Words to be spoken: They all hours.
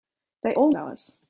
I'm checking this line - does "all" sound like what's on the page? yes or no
yes